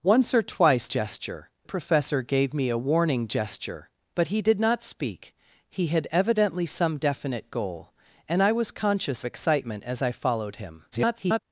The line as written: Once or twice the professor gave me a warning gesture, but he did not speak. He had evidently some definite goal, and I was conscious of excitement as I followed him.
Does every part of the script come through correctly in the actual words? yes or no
no